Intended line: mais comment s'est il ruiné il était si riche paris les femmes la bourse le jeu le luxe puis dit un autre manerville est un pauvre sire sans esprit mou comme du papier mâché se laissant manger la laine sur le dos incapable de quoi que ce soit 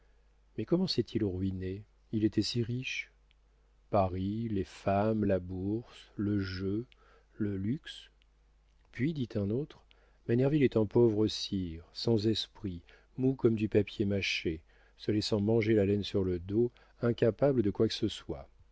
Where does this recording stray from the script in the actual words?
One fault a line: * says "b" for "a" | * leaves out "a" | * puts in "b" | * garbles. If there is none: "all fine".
all fine